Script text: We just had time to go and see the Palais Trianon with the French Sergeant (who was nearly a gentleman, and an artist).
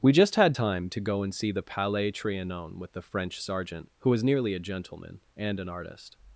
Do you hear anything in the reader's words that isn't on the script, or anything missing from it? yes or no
no